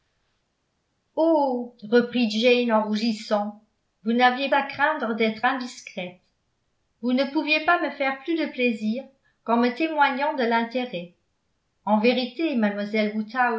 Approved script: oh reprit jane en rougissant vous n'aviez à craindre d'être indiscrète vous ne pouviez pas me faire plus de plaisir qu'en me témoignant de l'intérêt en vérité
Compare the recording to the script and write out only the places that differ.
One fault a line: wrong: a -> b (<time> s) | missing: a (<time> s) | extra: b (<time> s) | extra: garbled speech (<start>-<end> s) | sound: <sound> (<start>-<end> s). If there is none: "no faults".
no faults